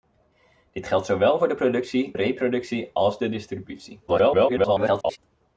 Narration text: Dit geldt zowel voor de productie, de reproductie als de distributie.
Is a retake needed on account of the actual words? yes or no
yes